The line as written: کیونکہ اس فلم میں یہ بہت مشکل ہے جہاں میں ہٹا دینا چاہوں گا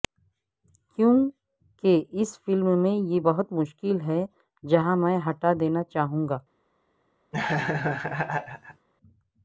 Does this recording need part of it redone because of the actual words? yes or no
no